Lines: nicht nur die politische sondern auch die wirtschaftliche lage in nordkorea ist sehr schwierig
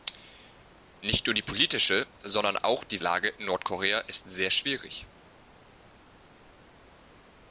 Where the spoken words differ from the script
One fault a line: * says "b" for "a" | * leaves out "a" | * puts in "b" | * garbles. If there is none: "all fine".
* leaves out "wirtschaftliche"